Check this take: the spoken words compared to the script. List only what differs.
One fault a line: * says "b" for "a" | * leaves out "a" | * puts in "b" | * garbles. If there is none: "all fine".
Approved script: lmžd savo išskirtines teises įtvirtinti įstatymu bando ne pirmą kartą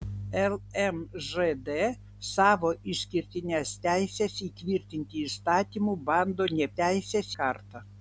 * says "teises" for "pirmą"